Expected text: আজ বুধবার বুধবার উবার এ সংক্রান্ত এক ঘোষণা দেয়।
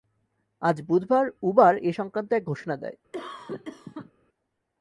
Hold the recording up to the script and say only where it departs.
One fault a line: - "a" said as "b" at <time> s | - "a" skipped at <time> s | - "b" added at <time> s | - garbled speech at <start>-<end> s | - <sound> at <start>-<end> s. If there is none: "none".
- "বুধবার" skipped at 1.2 s
- cough at 3.1-4.1 s